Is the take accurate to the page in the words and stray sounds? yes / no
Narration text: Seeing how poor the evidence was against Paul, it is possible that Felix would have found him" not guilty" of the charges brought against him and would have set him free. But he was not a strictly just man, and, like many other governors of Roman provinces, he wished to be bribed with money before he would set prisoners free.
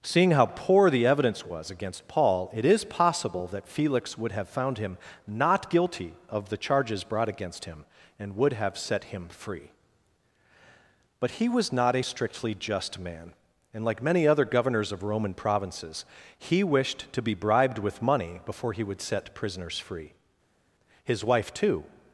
no